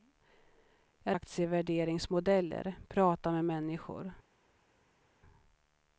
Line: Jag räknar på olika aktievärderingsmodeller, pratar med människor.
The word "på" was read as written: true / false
false